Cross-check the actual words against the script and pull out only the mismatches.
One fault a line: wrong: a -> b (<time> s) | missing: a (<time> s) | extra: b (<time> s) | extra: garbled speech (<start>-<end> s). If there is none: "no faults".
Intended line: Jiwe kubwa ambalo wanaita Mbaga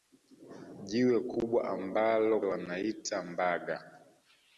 no faults